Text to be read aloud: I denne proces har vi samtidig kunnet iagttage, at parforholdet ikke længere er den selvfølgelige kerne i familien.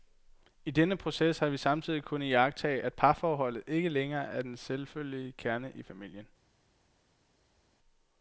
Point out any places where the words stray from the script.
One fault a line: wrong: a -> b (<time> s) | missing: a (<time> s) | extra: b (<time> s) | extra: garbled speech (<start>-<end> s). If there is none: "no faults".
no faults